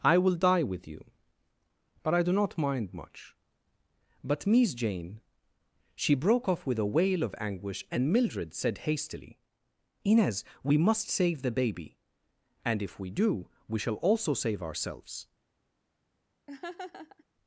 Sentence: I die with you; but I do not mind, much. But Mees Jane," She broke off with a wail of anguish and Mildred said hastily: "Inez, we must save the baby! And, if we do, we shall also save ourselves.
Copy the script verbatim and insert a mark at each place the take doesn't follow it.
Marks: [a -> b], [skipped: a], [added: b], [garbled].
I [added: will] die with you; but I do not mind, much. But Mees Jane," She broke off with a wail of anguish and Mildred said hastily: "Inez, we must save the baby! And, if we do, we shall also save ourselves.